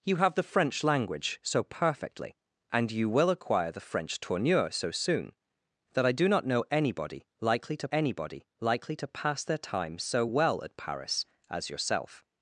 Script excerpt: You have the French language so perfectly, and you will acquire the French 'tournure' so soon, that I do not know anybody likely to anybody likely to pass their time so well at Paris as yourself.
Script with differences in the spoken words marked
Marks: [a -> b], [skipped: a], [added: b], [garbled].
You have the French language so perfectly, and you will acquire the French 'tournure' so soon, that I do not know anybody likely to anybody likely to pass their time so well at Paris as yourself.